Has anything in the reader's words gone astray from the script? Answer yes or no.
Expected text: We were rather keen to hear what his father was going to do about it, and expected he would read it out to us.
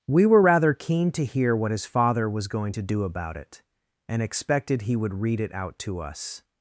no